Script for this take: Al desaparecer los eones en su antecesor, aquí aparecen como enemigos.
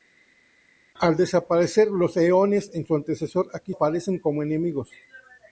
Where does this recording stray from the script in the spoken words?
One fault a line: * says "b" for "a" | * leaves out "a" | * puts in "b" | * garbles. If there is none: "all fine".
all fine